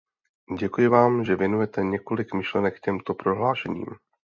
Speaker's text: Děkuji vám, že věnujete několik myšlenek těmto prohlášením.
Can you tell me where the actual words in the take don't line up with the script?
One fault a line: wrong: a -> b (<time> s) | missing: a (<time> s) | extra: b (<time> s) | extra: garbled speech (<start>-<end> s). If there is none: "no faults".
no faults